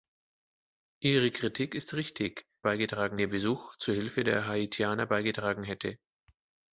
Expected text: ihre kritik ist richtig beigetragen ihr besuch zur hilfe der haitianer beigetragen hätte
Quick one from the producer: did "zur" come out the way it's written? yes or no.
yes